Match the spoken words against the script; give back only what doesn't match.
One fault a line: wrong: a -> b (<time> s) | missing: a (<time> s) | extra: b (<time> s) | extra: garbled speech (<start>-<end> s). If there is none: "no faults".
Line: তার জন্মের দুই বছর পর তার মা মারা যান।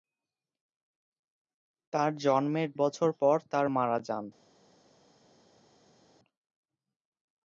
missing: দুই (2.7 s)
missing: মা (3.6 s)